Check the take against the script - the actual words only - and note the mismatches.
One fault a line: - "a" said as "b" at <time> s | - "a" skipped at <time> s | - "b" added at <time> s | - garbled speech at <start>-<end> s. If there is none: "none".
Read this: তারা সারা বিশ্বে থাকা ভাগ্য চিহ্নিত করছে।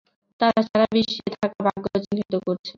none